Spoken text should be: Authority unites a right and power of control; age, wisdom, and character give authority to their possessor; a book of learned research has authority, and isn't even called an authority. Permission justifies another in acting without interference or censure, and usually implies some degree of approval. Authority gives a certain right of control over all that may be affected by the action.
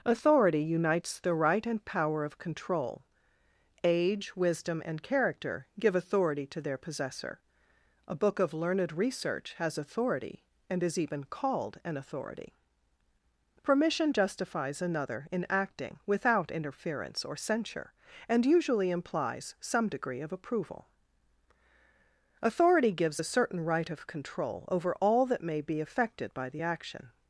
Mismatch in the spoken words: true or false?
true